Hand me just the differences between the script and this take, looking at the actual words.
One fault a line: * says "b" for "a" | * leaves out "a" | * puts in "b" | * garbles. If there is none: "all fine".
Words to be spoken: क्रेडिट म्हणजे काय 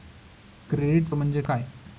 all fine